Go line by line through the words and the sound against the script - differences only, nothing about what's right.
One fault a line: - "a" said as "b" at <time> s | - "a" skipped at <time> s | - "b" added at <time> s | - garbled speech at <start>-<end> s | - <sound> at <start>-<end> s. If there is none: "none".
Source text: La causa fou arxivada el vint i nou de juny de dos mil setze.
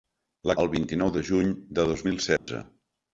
- "causa fou arxivada" skipped at 0.5 s
- dropout at 2.4-2.5 s